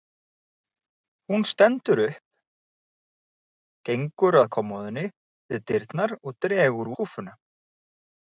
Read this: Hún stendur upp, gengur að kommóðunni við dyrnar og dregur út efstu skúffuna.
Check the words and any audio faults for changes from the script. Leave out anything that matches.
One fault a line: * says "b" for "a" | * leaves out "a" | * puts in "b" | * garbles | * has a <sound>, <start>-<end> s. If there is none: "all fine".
* leaves out "út efstu"